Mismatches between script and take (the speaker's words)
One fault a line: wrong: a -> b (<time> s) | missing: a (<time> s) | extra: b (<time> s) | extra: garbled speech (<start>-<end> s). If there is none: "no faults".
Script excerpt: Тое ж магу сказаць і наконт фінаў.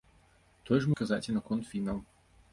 missing: магу (0.9 s)